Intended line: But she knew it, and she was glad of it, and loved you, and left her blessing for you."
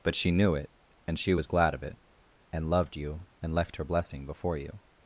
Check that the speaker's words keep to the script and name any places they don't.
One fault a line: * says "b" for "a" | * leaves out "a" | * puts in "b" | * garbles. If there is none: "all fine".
* says "before" for "for"